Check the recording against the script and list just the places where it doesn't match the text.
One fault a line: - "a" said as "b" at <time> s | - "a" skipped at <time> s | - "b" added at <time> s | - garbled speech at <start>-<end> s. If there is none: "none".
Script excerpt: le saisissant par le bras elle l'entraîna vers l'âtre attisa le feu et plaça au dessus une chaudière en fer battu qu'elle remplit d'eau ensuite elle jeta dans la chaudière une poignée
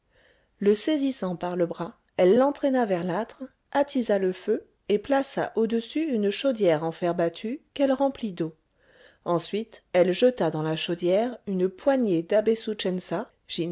none